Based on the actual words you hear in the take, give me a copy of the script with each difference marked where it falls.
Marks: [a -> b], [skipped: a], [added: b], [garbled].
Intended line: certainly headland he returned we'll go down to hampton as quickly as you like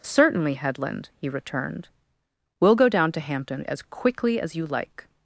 certainly headland he returned we'll go down to hampton as quickly as you like